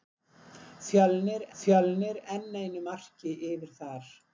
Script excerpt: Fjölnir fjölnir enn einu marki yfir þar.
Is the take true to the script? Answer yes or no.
yes